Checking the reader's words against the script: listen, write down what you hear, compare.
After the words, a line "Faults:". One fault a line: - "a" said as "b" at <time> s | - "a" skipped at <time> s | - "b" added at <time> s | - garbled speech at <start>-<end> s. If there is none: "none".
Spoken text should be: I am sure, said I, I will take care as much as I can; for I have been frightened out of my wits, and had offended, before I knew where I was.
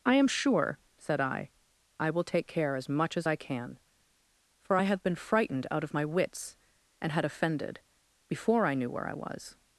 I am sure, said I, I will take care as much as I can; for I have been frightened out of my wits, and had offended, before I knew where I was.
Faults:
none